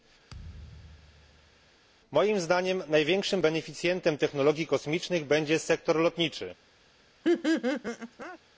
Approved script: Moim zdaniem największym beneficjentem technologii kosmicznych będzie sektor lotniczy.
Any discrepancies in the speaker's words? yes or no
no